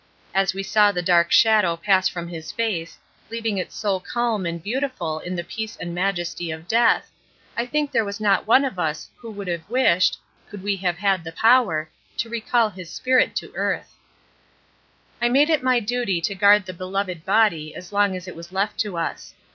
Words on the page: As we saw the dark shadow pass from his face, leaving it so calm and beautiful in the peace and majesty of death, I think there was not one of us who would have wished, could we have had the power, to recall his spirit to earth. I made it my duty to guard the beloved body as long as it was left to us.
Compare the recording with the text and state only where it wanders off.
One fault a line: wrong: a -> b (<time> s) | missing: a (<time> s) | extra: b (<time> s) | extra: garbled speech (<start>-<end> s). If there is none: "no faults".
no faults